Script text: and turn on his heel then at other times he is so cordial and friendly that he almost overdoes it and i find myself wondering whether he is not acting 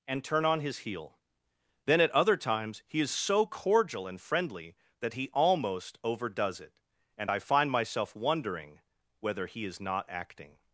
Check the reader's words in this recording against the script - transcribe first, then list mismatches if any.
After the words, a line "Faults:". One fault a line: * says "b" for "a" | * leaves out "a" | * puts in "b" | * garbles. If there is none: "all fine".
and turn on his heel then at other times he is so cordial and friendly that he almost overdoes it and i find myself wondering whether he is not acting
Faults:
all fine